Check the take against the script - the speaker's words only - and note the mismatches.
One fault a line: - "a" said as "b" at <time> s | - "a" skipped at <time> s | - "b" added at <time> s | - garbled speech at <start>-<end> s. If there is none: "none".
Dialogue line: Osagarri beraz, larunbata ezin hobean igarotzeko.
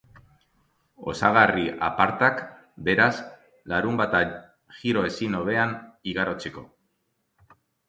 - "apartak" added at 1.9 s
- "giro" added at 4.8 s